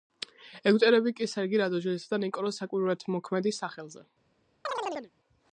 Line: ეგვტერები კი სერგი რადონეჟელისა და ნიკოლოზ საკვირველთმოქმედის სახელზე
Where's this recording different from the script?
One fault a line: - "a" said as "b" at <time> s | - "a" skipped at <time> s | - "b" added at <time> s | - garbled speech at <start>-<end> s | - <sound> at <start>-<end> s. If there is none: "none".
- chirp at 4.6-5.1 s